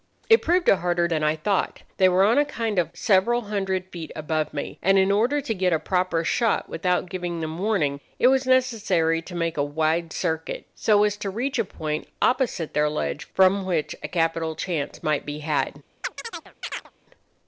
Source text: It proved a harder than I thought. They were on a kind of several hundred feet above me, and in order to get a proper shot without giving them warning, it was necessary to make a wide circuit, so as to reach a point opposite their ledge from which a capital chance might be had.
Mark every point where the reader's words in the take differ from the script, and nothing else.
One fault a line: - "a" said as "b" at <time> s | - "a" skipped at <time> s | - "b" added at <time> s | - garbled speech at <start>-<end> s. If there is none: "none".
none